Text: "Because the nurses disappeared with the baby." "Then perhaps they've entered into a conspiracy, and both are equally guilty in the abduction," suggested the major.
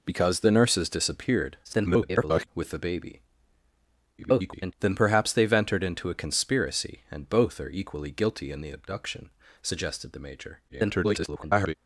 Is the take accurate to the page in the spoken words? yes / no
no